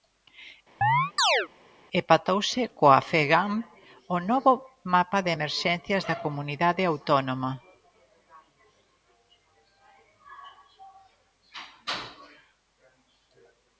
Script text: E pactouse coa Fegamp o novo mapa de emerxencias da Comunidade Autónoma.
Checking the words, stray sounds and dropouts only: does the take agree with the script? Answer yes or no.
no